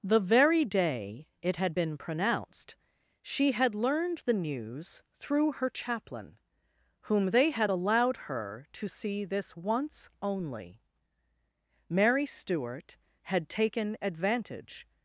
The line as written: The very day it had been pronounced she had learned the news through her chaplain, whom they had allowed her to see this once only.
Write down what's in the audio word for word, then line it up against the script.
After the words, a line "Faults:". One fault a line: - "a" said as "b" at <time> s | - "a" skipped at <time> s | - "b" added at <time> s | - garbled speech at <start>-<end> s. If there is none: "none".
The very day it had been pronounced she had learned the news through her chaplain, whom they had allowed her to see this once only. Mary Stuart had taken advantage
Faults:
- "Mary Stuart had taken advantage" added at 11.9 s